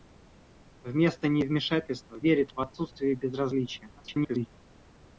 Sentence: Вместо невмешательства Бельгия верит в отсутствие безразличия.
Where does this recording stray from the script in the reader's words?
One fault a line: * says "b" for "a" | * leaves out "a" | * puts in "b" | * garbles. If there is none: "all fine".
* leaves out "Бельгия"
* garbles